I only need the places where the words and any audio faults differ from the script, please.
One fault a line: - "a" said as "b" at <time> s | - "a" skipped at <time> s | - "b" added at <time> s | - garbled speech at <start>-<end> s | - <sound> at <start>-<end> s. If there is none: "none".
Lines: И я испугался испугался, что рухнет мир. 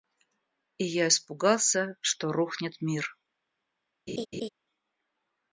- "испугался" skipped at 1.9 s
- laugh at 4.1-4.5 s